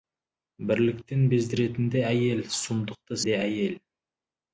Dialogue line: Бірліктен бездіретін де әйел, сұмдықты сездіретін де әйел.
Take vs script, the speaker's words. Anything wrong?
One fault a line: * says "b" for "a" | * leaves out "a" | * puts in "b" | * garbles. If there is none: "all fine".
* leaves out "сездіретін"